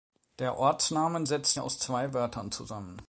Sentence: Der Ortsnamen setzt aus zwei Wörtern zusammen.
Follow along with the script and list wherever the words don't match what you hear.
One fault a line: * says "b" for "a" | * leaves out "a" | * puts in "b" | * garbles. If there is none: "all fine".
all fine